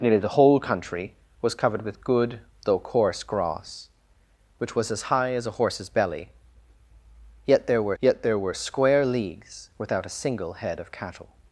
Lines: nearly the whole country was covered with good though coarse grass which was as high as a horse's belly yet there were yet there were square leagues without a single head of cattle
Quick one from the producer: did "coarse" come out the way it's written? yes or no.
yes